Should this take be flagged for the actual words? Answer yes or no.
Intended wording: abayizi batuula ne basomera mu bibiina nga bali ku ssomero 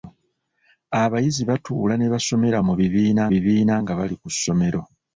yes